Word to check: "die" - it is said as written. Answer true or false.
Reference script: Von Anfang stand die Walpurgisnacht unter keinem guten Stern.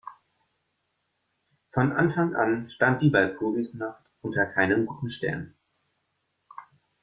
true